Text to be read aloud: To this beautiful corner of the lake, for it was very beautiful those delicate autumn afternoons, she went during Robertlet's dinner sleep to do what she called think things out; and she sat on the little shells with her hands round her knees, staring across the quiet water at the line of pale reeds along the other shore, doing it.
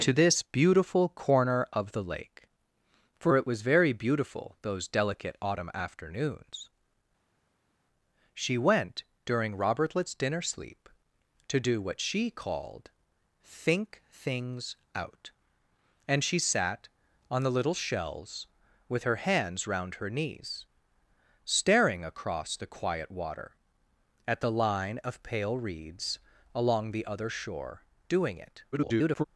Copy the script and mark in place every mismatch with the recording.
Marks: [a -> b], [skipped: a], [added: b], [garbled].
To this beautiful corner of the lake, for it was very beautiful those delicate autumn afternoons, she went during Robertlet's dinner sleep to do what she called think things out; and she sat on the little shells with her hands round her knees, staring across the quiet water at the line of pale reeds along the other shore, doing it. [garbled]